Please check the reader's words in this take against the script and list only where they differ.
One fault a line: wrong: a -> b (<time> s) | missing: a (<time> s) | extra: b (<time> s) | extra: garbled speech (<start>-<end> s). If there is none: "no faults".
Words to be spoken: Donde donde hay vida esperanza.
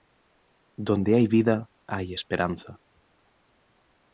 missing: donde (1.1 s)
extra: hay (1.9 s)